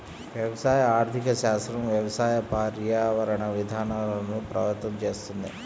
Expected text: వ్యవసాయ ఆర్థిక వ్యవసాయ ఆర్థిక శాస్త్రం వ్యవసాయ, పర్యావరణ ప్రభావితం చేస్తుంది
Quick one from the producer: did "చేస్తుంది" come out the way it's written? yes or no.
yes